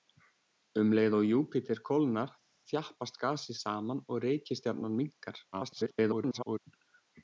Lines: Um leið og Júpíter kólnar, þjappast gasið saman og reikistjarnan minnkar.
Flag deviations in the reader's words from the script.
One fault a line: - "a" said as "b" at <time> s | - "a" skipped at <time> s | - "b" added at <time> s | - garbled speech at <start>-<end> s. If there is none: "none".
- garbled speech at 5.5-6.6 s